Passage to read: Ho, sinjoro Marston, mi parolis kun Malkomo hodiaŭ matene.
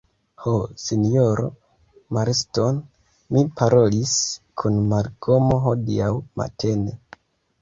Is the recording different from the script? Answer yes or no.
no